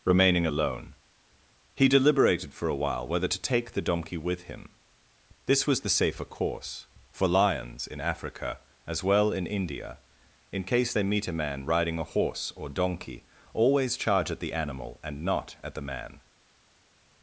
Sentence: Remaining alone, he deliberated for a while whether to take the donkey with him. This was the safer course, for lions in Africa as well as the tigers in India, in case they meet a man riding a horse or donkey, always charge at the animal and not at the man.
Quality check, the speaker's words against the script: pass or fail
fail